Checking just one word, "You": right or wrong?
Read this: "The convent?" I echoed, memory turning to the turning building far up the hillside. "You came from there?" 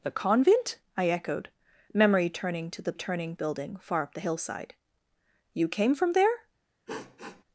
right